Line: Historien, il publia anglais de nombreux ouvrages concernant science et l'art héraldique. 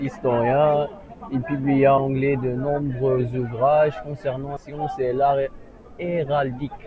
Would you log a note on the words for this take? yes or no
no